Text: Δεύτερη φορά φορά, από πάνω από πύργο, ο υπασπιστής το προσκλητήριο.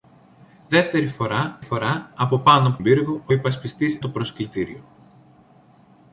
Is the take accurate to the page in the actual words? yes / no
yes